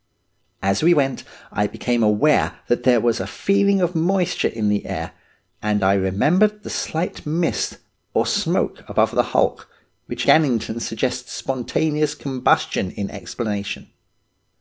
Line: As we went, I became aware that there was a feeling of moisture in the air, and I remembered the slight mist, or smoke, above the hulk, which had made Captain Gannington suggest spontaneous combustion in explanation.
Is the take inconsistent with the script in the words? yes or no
yes